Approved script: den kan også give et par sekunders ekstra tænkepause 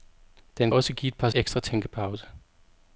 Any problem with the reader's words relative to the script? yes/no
yes